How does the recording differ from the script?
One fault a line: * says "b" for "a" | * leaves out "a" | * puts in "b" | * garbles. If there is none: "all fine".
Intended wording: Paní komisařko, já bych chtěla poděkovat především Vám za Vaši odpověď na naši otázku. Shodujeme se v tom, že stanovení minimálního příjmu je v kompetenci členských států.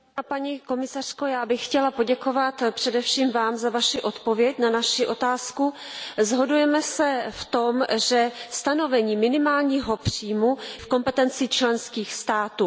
* leaves out "je"